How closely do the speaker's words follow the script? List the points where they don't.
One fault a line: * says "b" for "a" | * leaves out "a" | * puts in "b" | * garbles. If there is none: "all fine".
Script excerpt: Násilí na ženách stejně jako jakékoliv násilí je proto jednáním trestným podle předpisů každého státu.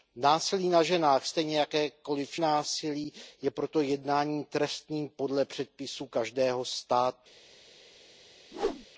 all fine